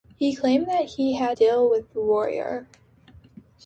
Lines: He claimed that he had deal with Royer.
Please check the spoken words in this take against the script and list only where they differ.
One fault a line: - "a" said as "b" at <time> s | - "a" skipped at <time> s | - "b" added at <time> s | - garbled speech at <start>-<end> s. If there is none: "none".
none